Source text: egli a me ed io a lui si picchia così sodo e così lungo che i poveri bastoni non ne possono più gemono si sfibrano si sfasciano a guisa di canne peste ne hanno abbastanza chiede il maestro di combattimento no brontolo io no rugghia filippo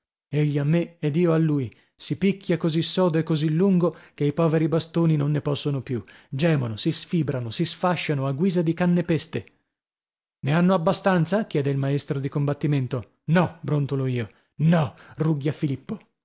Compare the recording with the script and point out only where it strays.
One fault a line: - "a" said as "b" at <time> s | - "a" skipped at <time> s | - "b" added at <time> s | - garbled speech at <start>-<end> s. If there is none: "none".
none